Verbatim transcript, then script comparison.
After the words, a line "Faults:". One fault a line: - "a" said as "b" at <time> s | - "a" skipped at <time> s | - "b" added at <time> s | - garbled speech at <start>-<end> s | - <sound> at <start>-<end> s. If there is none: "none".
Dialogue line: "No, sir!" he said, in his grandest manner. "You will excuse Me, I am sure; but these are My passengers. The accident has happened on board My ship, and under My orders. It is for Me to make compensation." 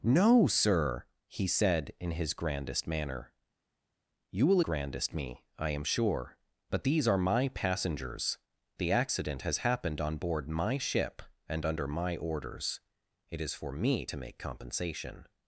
"No, sir!" he said, in his grandest manner. "You will grandest Me, I am sure; but these are My passengers. The accident has happened on board My ship, and under My orders. It is for Me to make compensation."
Faults:
- "excuse" said as "grandest" at 4.6 s